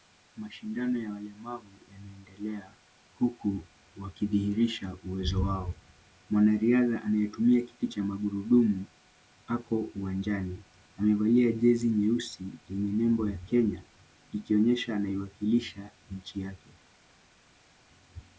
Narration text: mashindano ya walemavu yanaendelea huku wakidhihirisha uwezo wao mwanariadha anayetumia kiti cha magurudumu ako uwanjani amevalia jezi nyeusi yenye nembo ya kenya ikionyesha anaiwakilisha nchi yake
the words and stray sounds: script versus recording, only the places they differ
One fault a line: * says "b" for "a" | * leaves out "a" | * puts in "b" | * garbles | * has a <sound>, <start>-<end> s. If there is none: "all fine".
all fine